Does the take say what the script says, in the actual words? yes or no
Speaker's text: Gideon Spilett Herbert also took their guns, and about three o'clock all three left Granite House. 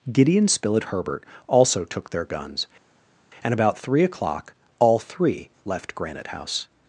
yes